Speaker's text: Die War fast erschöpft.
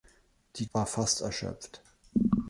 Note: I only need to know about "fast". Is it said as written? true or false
true